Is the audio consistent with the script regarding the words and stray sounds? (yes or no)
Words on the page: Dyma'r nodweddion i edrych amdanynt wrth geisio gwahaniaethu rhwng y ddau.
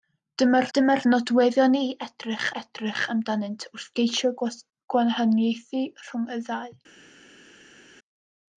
no